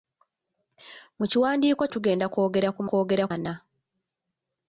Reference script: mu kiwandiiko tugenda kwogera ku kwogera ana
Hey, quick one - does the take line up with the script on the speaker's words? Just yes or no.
yes